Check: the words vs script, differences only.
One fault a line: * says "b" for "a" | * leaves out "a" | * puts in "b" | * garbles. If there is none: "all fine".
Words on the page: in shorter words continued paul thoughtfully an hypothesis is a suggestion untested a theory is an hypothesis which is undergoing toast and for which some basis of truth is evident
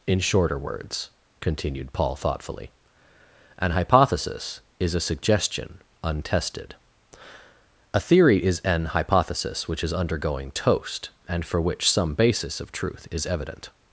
all fine